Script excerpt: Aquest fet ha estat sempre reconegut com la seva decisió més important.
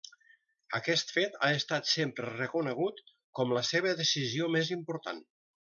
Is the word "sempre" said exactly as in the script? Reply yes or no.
yes